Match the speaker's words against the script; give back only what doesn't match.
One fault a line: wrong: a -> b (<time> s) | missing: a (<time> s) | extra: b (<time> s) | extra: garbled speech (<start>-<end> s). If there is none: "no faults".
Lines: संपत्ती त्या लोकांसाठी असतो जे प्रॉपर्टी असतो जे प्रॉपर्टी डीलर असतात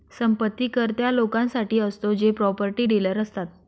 extra: कर (0.7 s)
missing: असतो जे प्रॉपर्टी (2.9 s)